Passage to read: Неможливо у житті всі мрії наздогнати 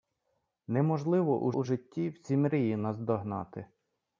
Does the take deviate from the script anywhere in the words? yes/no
yes